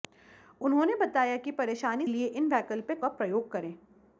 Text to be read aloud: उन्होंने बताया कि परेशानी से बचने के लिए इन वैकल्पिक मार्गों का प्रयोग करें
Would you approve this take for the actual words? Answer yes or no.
no